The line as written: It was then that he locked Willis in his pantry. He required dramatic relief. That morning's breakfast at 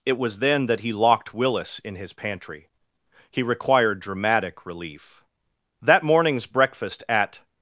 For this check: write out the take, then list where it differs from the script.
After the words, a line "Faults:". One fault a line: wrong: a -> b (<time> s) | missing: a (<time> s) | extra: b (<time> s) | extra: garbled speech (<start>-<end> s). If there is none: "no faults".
It was then that he locked Willis in his pantry. He required dramatic relief. That morning's breakfast at
Faults:
no faults